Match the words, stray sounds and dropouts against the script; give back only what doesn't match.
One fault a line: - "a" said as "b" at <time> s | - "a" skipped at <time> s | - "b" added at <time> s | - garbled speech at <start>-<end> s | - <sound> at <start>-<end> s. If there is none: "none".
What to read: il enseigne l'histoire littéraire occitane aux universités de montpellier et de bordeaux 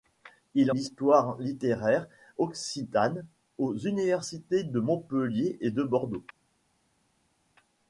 - "enseigne" skipped at 0.7 s